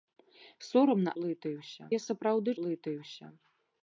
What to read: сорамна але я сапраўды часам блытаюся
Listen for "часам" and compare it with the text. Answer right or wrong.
wrong